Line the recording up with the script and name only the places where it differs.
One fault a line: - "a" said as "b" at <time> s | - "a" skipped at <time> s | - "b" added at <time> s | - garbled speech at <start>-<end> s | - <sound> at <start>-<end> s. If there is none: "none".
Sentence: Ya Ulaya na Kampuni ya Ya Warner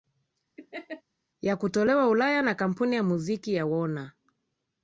- laugh at 0.6-1.0 s
- "kutolewa" added at 1.6 s
- "Muziki" added at 3.0 s